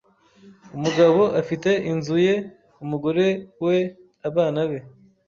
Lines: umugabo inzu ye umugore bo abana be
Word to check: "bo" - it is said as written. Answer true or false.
false